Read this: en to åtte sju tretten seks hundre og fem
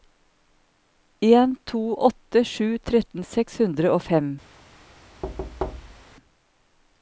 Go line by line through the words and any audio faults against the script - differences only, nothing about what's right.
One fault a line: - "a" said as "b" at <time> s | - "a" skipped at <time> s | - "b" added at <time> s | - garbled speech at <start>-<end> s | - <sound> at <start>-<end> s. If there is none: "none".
- thud at 5.2-6.0 s